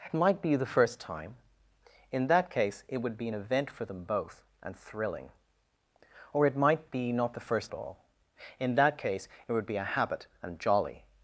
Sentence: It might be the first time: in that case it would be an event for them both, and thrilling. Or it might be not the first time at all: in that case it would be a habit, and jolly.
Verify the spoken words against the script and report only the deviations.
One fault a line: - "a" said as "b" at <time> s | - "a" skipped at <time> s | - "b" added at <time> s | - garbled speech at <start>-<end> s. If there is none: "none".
- "time" skipped at 7.7 s